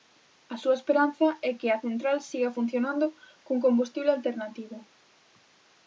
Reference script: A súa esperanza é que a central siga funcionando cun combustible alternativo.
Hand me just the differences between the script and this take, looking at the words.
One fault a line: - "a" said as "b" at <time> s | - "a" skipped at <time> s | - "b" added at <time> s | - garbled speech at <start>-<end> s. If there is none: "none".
none